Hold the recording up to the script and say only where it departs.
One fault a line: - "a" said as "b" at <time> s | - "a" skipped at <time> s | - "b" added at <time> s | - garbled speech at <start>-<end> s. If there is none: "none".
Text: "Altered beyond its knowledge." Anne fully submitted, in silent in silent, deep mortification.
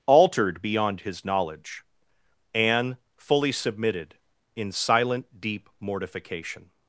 - "its" said as "his" at 1.0 s
- "in silent" skipped at 5.4 s